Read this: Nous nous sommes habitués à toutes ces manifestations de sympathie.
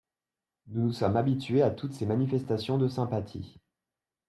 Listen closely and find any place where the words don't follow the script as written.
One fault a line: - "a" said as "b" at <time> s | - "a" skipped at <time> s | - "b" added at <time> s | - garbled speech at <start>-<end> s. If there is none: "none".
none